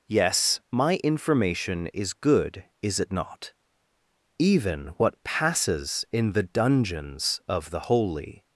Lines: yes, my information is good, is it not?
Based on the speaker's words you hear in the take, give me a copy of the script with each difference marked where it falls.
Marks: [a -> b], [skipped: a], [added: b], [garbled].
yes, my information is good, is it not? [added: Even what passes in the dungeons of the Holy]